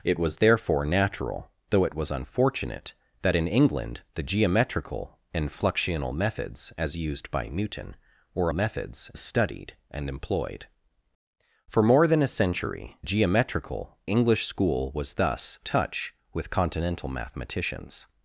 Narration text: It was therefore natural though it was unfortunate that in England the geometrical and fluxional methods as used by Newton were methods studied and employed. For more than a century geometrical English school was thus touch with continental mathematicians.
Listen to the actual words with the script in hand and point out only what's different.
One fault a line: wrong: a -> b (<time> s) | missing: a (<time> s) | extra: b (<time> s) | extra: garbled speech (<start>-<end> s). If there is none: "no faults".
no faults